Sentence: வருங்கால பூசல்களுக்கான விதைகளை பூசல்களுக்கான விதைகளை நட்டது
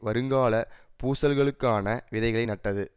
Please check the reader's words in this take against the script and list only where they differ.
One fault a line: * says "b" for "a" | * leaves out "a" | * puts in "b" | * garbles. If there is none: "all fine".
* leaves out "பூசல்களுக்கான விதைகளை"